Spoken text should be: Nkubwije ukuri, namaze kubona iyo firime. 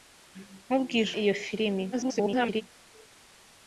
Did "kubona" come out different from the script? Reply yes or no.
yes